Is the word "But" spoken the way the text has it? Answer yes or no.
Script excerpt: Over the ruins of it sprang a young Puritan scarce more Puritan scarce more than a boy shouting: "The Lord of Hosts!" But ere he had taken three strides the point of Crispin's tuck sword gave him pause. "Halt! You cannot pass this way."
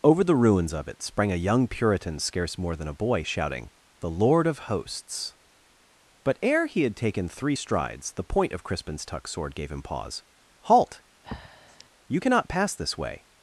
yes